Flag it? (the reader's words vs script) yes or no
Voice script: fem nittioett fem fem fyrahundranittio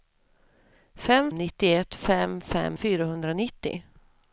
no